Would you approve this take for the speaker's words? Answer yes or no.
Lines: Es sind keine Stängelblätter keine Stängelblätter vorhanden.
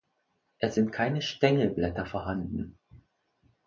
no